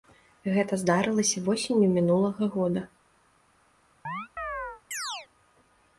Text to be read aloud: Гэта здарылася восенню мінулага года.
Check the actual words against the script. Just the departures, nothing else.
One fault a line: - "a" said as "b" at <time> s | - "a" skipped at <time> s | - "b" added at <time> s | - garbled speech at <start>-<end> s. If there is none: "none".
none